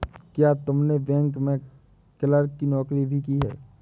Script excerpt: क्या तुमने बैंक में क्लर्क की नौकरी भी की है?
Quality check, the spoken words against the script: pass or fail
pass